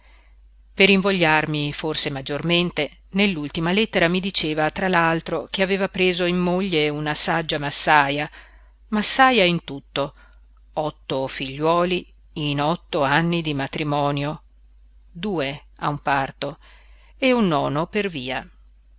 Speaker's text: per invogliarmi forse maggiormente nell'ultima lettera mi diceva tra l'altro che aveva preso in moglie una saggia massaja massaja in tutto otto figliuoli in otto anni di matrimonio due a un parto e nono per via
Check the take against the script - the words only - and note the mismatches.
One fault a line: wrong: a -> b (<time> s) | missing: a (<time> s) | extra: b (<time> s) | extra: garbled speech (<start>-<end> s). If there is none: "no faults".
extra: un (17.3 s)